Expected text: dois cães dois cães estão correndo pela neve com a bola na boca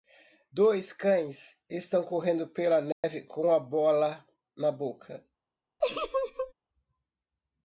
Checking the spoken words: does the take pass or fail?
fail